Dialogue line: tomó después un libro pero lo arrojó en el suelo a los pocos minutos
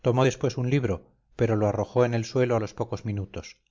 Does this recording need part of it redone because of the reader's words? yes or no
no